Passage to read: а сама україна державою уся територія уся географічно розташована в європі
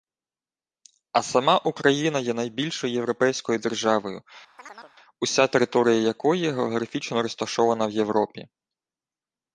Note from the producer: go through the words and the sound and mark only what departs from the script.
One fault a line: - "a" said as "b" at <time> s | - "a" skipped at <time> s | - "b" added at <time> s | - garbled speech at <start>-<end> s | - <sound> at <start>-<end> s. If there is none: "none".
- "є найбільшою європейською" added at 2.2 s
- chirp at 4.6-4.9 s
- "уся" said as "якої" at 5.9 s